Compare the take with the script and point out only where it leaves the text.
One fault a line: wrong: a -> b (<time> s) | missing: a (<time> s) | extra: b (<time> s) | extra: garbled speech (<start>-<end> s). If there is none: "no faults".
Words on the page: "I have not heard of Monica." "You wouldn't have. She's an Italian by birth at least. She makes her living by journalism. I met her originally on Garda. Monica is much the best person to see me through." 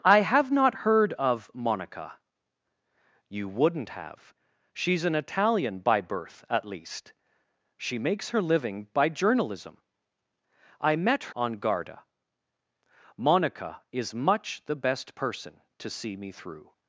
missing: her originally (11.3 s)